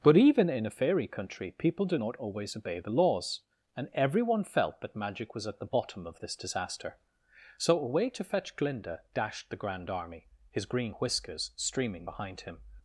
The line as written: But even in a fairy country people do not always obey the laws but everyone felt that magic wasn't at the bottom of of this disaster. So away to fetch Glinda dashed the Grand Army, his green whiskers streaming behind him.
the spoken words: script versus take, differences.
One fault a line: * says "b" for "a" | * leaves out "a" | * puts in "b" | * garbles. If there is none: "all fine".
* says "and" for "but"
* says "was" for "wasn't"
* leaves out "of"